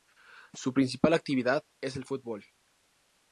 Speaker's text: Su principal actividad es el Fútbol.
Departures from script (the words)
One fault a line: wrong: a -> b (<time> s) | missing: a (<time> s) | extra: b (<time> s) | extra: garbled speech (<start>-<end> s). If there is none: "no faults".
no faults